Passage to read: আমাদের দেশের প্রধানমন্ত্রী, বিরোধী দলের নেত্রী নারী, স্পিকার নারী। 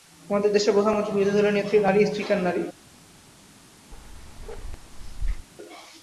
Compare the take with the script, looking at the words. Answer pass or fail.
pass